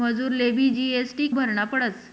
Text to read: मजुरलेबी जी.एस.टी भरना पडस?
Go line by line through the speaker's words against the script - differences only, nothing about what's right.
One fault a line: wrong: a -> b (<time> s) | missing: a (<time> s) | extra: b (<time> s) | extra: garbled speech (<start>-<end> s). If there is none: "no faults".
no faults